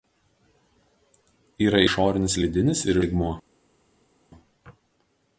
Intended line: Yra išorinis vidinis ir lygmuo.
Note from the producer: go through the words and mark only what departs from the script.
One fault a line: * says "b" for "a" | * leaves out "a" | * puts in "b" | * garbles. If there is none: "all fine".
all fine